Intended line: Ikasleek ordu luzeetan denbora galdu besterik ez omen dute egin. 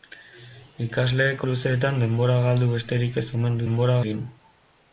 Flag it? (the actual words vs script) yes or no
yes